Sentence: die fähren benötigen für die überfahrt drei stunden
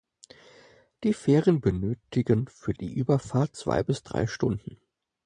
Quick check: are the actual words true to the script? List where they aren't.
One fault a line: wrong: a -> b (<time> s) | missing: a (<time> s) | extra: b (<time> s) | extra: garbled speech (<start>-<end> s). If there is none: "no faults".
extra: zwei bis (3.6 s)